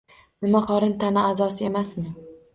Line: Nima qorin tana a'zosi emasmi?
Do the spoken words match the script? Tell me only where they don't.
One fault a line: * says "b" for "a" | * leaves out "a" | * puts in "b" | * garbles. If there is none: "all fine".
all fine